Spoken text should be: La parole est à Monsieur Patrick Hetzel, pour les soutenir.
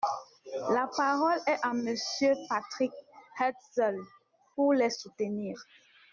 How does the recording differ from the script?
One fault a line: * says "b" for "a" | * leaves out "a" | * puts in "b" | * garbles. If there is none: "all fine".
all fine